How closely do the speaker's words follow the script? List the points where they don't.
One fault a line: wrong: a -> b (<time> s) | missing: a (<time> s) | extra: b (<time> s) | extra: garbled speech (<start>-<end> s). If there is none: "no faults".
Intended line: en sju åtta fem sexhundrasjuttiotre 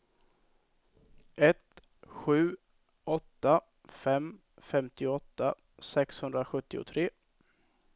wrong: en -> ett (1.4 s)
extra: femtioåtta (4.6 s)